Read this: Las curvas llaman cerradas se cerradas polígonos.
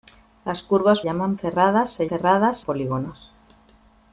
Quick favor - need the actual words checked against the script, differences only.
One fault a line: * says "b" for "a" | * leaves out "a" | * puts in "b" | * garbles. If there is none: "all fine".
all fine